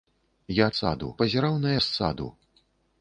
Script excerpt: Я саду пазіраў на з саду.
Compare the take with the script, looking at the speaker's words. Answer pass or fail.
pass